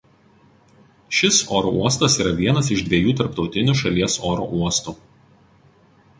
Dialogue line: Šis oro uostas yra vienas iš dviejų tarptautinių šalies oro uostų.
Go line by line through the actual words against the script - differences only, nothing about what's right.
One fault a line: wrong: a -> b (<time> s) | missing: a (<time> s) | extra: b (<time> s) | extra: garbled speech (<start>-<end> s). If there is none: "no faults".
no faults